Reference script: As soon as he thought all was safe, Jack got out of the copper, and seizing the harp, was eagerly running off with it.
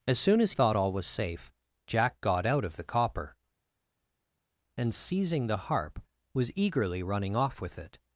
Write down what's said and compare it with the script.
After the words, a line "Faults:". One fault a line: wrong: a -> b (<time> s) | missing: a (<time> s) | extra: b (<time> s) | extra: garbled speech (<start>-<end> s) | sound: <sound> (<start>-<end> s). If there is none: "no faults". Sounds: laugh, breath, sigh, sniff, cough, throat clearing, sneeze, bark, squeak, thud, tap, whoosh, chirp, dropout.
As soon as thought all was safe, Jack got out of the copper, and seizing the harp, was eagerly running off with it.
Faults:
missing: he (0.5 s)